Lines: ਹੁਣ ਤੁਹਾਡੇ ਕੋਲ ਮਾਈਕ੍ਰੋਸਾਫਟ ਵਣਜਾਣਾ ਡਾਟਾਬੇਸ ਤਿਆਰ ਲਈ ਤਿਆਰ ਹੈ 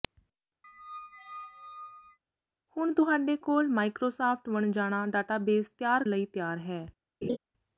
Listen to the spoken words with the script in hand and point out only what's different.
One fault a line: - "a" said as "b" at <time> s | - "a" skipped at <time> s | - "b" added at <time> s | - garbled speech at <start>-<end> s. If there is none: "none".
none